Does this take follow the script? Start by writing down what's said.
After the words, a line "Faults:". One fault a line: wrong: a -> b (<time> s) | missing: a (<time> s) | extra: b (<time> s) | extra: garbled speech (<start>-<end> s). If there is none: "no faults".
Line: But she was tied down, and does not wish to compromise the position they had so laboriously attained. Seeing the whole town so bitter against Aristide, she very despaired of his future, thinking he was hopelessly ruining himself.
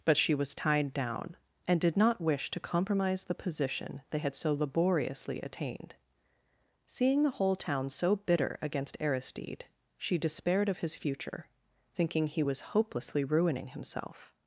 But she was tied down, and did not wish to compromise the position they had so laboriously attained. Seeing the whole town so bitter against Aristide, she despaired of his future, thinking he was hopelessly ruining himself.
Faults:
wrong: does -> did (1.8 s)
missing: very (10.2 s)